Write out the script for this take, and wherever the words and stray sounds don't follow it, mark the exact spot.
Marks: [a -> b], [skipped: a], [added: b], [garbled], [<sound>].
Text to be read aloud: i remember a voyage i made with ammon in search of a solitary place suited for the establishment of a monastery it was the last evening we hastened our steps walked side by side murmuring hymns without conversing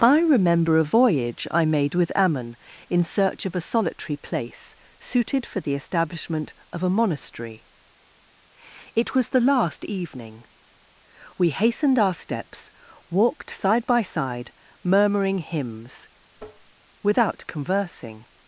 i remember a voyage i made with ammon in search of a solitary place suited for the establishment of a monastery it was the last evening we hastened our steps walked side by side murmuring hymns [tap] without conversing